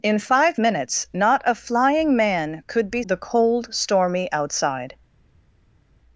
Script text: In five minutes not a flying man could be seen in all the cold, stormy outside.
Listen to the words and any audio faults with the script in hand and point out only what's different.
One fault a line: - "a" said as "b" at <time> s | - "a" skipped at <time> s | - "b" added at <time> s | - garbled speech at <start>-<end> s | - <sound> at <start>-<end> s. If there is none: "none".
- "seen in all" skipped at 3.0 s